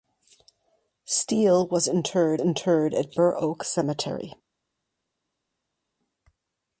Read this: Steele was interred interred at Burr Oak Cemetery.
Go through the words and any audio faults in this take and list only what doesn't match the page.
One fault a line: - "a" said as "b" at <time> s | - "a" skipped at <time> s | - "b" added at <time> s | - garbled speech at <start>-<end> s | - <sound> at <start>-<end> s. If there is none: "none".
none